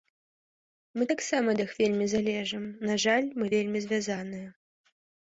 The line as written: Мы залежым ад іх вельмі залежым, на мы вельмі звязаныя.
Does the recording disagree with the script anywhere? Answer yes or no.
yes